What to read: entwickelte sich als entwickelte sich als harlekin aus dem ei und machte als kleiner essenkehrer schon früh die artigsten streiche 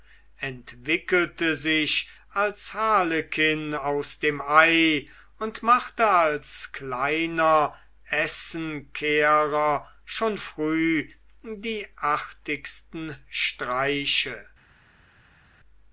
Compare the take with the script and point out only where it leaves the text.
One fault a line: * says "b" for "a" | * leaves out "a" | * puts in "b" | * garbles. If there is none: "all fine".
* leaves out "entwickelte sich als"